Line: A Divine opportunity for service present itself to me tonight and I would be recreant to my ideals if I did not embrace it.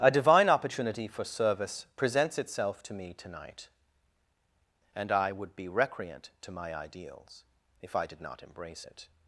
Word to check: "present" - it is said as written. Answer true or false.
false